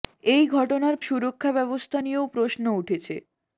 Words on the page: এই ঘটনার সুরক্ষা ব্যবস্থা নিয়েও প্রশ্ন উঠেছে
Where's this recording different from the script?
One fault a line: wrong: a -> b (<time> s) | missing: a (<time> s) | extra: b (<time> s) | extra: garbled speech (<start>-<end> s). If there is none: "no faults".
no faults